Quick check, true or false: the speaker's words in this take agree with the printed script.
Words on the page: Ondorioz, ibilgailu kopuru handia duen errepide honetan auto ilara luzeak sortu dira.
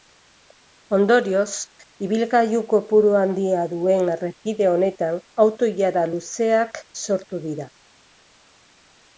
true